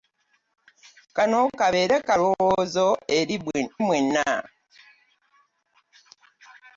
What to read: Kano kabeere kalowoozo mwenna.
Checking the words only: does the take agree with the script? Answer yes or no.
yes